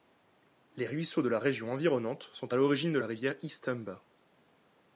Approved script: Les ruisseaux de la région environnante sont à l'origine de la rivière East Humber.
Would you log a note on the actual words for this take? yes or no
no